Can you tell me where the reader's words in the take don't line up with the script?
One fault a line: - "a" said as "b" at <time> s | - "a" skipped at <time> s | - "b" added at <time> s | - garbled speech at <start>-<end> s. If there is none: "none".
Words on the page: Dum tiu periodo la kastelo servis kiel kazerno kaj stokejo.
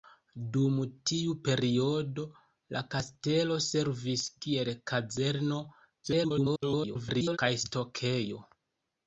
- garbled speech at 6.0-7.4 s